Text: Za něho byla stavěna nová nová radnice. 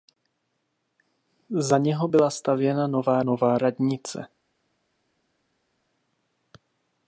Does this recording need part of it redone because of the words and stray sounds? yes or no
no